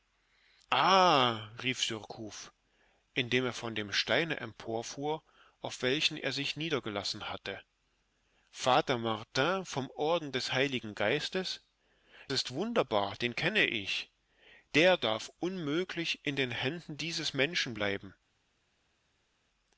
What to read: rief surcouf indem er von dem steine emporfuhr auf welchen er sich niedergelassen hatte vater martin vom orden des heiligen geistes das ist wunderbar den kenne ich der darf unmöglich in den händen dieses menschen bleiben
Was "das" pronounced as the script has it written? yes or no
no